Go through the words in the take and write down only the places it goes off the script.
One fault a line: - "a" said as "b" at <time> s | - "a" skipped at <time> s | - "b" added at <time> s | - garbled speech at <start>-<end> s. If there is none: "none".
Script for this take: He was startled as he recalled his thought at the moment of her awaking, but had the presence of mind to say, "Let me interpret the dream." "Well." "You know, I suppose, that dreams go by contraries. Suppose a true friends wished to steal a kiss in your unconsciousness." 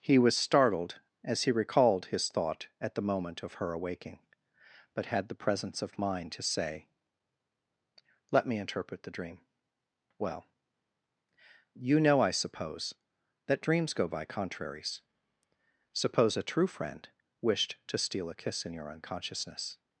- "friends" said as "friend" at 16.7 s